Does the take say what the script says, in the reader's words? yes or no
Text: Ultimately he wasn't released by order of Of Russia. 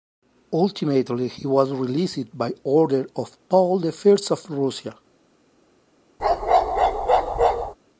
no